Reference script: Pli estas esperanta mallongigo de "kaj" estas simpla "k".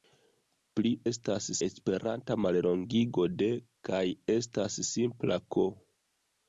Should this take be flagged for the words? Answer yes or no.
no